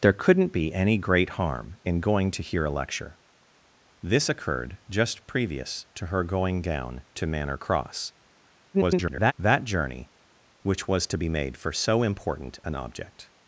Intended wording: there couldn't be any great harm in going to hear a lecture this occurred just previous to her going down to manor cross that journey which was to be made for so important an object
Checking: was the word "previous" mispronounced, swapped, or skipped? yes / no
no